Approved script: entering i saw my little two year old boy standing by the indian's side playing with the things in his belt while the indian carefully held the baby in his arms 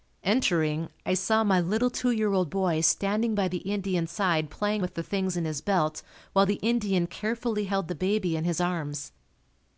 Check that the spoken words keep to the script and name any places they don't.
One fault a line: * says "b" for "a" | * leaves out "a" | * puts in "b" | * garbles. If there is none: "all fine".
all fine